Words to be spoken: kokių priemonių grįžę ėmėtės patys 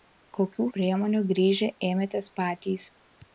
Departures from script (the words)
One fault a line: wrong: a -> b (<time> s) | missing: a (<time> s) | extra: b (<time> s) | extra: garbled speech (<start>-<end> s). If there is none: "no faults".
no faults